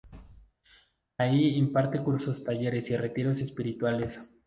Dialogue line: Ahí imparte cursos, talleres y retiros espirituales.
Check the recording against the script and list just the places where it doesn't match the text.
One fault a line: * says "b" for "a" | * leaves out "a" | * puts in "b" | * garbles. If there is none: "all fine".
all fine